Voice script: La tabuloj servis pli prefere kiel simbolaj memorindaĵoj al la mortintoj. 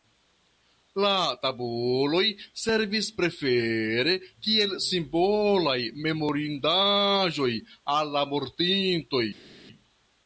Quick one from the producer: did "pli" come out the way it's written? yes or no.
no